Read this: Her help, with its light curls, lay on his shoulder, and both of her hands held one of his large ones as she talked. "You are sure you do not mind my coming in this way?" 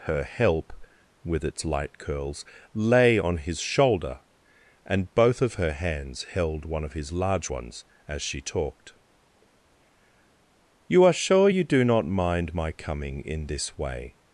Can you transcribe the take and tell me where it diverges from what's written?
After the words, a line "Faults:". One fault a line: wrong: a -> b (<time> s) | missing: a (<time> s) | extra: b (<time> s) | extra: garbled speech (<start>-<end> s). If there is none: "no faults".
Her help, with its light curls, lay on his shoulder, and both of her hands held one of his large ones as she talked. "You are sure you do not mind my coming in this way?"
Faults:
no faults